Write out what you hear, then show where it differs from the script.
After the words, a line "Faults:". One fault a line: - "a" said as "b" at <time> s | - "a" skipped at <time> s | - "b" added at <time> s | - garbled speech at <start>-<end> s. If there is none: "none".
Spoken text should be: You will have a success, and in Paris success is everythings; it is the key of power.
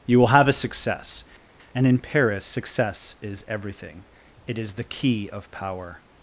You will have a success, and in Paris success is everything; it is the key of power.
Faults:
- "everythings" said as "everything" at 3.5 s